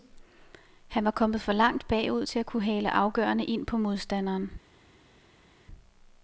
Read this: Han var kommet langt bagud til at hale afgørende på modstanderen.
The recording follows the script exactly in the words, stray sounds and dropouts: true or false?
false